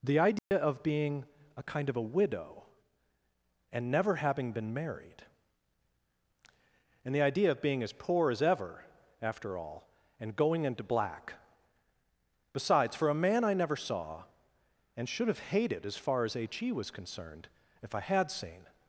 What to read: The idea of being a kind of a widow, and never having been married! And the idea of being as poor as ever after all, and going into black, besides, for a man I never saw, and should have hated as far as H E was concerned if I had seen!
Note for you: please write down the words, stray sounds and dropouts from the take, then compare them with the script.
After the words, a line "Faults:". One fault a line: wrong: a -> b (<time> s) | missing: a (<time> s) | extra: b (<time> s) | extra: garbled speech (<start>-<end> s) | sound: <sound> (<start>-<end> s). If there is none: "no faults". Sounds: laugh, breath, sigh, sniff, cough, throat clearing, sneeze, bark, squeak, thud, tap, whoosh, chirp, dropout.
The idea of being a kind of a widow, and never having been married! And the idea of being as poor as ever after all, and going into black, besides, for a man I never saw, and should have hated as far as H E was concerned if I had seen!
Faults:
sound: dropout (0.4-0.5 s)